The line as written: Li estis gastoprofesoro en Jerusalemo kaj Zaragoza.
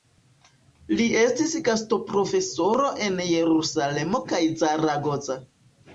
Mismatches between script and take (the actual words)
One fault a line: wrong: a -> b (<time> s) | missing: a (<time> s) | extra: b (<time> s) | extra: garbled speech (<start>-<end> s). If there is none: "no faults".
no faults